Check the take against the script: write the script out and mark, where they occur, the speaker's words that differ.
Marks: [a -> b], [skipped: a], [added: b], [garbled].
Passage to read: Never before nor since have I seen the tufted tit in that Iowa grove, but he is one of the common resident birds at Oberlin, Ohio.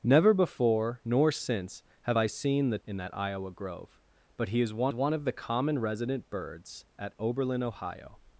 Never before nor since have I seen the [skipped: tufted tit] in that Iowa grove, but he is one [added: one] of the common resident birds at Oberlin, Ohio.